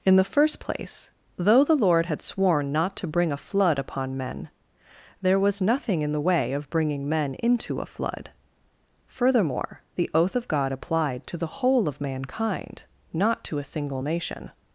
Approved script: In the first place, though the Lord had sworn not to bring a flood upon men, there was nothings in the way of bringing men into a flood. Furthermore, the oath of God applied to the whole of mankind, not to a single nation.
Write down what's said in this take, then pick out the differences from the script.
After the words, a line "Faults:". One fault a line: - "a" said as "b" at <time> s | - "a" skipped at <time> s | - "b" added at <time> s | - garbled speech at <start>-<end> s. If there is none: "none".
In the first place, though the Lord had sworn not to bring a flood upon men, there was nothing in the way of bringing men into a flood. Furthermore, the oath of God applied to the whole of mankind, not to a single nation.
Faults:
- "nothings" said as "nothing" at 5.6 s